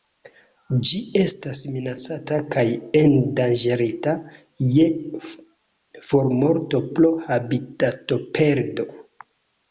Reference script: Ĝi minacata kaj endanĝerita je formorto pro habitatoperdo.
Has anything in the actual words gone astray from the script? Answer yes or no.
yes